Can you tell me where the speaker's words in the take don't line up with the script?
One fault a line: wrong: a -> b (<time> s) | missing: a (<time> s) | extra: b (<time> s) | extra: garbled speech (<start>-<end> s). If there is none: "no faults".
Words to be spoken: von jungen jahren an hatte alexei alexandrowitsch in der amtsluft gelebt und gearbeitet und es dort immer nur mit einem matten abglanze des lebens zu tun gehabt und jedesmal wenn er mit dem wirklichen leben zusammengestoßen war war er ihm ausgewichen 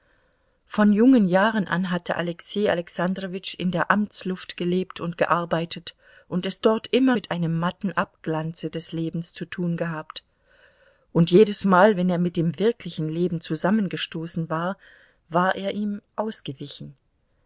missing: nur (7.2 s)